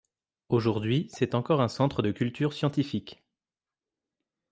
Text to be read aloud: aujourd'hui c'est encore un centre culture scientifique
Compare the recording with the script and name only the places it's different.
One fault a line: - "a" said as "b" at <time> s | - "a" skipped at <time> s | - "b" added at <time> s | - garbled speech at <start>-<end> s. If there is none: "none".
- "de" added at 2.0 s